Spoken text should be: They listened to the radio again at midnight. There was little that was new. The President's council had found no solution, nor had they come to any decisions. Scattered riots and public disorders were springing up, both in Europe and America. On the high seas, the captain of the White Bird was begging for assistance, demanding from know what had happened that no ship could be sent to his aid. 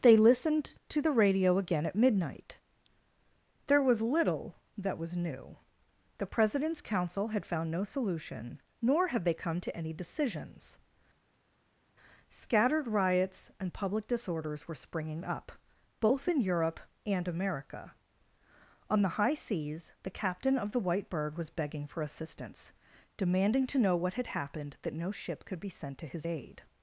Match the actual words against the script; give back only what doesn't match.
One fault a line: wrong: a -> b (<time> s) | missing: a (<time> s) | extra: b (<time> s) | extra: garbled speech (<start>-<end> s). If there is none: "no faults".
wrong: from -> to (23.7 s)